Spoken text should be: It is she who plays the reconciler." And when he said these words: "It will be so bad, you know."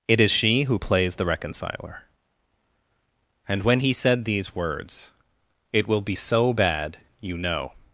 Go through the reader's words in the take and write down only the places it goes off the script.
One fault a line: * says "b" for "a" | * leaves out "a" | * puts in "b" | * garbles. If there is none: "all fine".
all fine